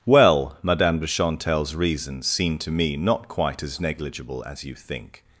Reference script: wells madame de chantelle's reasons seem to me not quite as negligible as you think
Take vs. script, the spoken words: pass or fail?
fail